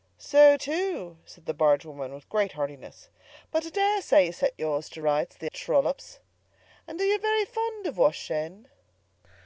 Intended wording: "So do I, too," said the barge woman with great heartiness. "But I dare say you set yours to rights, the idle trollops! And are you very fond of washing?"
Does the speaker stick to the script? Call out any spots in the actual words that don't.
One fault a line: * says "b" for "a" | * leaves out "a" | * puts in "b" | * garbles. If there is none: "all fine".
* leaves out "do I"
* leaves out "idle"